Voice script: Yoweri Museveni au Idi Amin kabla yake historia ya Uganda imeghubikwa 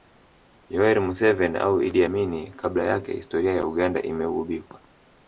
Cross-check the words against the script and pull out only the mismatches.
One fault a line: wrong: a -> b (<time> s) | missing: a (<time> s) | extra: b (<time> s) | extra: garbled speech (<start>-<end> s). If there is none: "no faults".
no faults